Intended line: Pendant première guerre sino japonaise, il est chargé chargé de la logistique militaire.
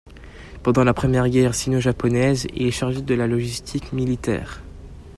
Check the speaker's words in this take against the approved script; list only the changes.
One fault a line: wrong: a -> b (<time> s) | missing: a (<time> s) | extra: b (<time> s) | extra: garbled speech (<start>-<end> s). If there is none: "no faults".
extra: la (0.8 s)
missing: chargé (3.0 s)